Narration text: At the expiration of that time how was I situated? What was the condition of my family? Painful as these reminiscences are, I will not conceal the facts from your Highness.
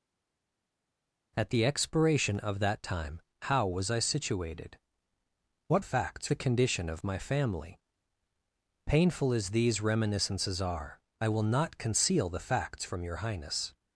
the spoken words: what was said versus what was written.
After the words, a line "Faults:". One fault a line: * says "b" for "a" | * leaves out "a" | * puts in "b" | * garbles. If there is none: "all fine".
At the expiration of that time how was I situated? What facts the condition of my family? Painful as these reminiscences are, I will not conceal the facts from your Highness.
Faults:
* says "facts" for "was"